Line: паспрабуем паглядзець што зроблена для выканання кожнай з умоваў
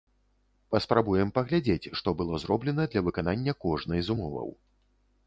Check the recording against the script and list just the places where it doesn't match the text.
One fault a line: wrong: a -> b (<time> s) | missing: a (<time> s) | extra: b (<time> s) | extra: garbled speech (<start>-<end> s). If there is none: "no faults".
extra: было (2.2 s)